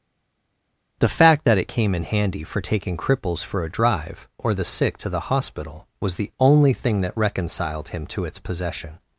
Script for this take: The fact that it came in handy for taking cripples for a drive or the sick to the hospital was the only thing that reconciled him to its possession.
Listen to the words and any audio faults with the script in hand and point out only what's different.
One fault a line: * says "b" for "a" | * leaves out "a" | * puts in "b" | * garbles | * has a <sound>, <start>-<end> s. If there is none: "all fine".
all fine